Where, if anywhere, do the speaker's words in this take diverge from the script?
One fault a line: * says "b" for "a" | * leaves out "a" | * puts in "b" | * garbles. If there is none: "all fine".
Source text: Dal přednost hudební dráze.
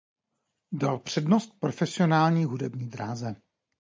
* puts in "profesionální"